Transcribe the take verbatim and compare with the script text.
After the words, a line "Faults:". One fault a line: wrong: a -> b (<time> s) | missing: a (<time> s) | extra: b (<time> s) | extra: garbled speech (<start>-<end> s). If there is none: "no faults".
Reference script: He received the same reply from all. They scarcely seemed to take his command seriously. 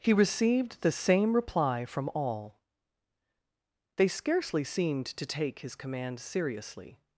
He received the same reply from all. They scarcely seemed to take his command seriously.
Faults:
no faults